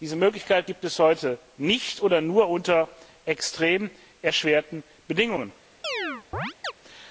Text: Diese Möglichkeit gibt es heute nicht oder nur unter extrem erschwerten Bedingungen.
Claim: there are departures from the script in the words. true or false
false